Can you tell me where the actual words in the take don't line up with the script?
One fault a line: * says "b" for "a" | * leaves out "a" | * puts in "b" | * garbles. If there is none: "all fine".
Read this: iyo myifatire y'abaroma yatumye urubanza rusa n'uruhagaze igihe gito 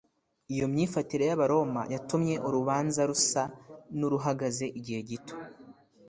all fine